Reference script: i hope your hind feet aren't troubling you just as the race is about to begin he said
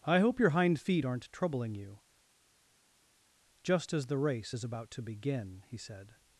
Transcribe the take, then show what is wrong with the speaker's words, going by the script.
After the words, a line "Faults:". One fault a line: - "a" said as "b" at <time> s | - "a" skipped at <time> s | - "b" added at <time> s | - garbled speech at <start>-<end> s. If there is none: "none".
i hope your hind feet aren't troubling you just as the race is about to begin he said
Faults:
none